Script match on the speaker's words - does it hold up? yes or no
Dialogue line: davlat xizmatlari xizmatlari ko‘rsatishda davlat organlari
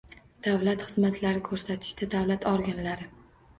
no